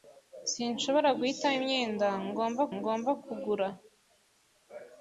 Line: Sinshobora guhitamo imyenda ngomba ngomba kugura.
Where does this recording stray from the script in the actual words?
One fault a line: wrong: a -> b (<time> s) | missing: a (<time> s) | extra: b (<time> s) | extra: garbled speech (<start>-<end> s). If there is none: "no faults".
no faults